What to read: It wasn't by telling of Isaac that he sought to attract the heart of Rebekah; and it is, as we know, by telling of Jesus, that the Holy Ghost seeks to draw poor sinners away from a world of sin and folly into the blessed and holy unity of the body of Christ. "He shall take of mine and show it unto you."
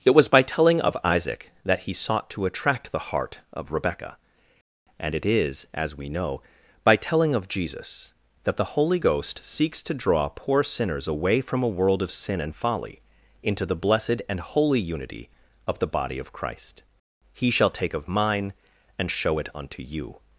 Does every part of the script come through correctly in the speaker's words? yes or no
no